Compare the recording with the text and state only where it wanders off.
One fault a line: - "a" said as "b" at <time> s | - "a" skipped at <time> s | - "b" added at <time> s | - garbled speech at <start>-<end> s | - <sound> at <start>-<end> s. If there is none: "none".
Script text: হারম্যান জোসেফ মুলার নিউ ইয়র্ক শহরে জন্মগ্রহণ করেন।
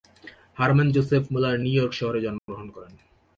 - dropout at 2.4-2.5 s